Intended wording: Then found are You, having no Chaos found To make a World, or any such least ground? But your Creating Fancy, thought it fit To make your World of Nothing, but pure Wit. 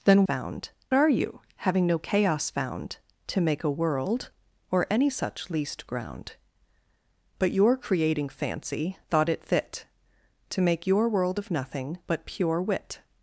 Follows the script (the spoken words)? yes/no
yes